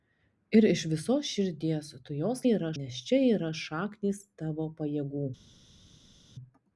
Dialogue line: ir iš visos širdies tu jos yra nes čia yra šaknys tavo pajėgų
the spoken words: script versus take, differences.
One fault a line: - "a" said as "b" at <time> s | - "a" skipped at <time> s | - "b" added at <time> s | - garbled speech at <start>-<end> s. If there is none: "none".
none